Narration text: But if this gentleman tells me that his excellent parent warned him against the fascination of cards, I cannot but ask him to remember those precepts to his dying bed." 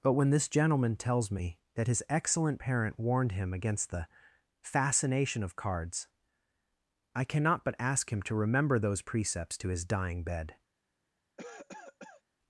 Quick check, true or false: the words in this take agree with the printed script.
false